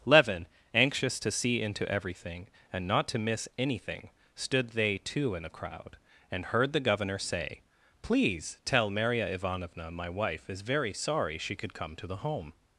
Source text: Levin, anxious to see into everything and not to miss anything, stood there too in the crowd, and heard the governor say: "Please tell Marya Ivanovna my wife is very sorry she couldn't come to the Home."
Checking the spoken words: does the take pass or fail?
fail